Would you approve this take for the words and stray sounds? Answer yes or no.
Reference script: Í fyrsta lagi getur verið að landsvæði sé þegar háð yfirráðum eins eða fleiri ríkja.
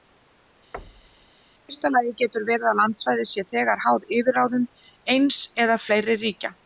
no